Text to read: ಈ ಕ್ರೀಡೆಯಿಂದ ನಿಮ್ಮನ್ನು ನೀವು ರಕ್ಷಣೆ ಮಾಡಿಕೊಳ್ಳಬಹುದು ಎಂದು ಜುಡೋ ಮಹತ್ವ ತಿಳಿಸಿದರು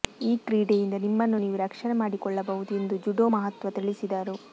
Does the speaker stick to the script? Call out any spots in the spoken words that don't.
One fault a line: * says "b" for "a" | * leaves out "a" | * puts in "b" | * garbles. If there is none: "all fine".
all fine